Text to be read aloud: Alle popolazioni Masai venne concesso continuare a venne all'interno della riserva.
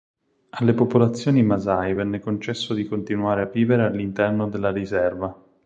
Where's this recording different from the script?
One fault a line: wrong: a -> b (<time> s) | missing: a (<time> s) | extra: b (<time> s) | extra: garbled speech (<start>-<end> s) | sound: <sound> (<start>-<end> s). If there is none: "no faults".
extra: di (2.8 s)
wrong: venne -> vivere (3.5 s)